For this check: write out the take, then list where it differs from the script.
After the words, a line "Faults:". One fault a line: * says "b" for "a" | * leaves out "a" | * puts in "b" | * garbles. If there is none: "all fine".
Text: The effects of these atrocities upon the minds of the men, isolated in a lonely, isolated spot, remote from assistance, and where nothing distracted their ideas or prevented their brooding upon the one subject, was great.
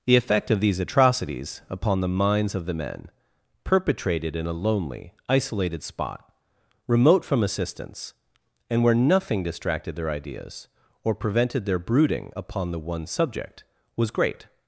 The effect of these atrocities upon the minds of the men, perpetrated in a lonely, isolated spot, remote from assistance, and where nothing distracted their ideas or prevented their brooding upon the one subject, was great.
Faults:
* says "effect" for "effects"
* says "perpetrated" for "isolated"